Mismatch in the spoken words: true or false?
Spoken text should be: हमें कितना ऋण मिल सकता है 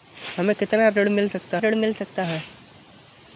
true